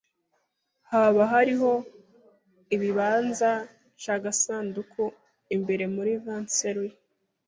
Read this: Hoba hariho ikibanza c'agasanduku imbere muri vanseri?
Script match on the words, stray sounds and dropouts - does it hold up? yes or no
yes